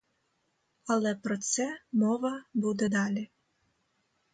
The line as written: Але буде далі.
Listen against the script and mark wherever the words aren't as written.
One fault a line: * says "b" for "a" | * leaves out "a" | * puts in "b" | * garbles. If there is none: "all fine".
* puts in "про це мова"